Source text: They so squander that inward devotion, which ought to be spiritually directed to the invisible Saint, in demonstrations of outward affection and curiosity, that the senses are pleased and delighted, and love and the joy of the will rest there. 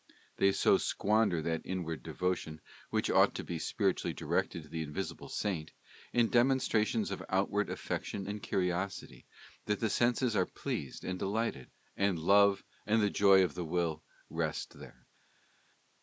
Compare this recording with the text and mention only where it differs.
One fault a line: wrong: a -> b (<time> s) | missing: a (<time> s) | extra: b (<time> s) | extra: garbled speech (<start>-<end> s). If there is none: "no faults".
no faults